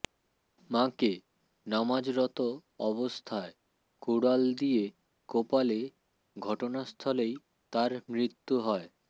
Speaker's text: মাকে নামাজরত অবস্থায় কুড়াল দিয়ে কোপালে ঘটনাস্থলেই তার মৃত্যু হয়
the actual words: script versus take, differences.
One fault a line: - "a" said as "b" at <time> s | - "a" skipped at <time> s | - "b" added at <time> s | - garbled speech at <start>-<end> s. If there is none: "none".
none